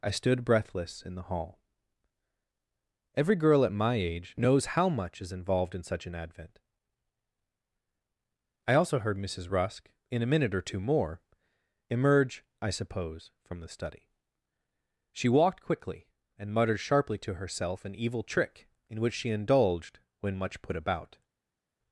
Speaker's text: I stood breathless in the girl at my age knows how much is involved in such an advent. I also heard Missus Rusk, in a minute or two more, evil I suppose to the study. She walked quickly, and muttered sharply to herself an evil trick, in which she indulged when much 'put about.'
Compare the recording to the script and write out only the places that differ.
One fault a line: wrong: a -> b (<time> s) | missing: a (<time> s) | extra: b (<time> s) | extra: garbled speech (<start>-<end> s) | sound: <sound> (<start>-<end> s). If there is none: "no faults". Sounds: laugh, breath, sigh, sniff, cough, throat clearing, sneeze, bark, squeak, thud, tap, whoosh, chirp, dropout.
extra: hall Every (1.3 s)
wrong: evil -> emerge (11.9 s)
wrong: to -> from (13.4 s)